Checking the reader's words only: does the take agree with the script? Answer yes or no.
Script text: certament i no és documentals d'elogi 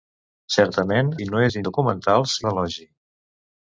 yes